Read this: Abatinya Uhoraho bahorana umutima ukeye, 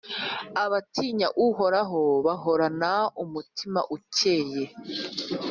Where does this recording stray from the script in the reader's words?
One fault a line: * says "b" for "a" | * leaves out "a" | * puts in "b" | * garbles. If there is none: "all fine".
all fine